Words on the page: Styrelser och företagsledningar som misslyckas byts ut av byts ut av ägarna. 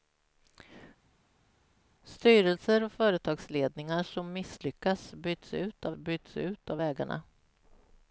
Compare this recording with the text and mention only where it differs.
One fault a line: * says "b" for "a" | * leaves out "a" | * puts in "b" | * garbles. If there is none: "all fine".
all fine